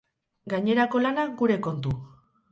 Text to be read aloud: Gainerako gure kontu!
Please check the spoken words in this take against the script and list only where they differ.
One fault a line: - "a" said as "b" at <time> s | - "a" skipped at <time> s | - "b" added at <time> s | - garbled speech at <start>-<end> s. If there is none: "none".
- "lana" added at 1.0 s